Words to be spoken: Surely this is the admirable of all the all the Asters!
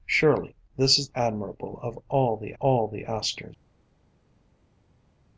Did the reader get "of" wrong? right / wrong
right